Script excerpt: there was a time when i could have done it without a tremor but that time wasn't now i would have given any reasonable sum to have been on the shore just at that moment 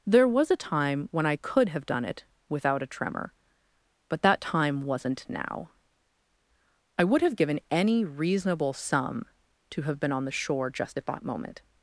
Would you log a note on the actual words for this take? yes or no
no